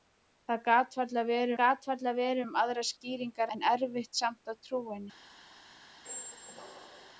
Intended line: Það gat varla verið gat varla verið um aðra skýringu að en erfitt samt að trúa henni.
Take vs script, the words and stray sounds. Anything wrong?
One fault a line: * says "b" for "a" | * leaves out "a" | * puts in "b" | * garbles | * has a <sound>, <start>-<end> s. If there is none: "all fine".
* has a squeak, 6.0-7.1 s